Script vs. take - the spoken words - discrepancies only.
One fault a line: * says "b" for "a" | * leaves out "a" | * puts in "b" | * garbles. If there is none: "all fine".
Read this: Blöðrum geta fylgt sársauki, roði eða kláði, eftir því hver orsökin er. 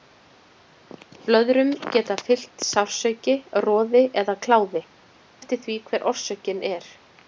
all fine